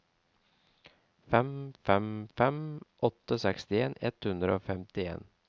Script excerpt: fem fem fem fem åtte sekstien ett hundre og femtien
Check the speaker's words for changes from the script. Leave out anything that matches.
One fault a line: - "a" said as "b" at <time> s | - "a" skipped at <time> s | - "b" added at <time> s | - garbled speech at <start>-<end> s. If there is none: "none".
- "fem" skipped at 2.6 s